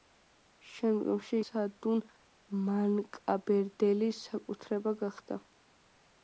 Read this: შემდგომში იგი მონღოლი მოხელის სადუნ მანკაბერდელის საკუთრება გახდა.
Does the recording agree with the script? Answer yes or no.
no